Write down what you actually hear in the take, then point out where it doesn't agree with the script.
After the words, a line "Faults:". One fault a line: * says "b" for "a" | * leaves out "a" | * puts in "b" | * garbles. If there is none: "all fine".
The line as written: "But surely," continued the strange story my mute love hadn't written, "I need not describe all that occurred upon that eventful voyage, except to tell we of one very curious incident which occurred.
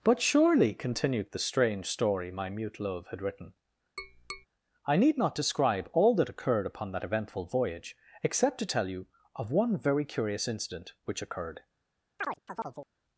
"But surely," continued the strange story my mute love had written, "I need not describe all that occurred upon that eventful voyage, except to tell you of one very curious incident which occurred.
Faults:
* says "had" for "hadn't"
* says "you" for "we"